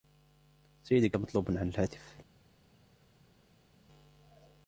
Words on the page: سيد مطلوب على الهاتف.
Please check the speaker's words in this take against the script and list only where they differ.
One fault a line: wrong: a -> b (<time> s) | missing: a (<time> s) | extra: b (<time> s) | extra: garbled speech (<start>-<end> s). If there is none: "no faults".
no faults